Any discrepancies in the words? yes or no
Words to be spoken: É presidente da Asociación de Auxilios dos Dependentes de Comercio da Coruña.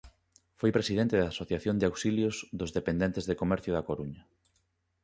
yes